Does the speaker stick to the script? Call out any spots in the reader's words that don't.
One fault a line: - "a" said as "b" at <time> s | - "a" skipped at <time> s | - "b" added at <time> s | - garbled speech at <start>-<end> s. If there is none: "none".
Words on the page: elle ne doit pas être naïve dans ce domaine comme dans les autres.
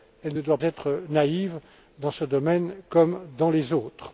- "pas" skipped at 0.6 s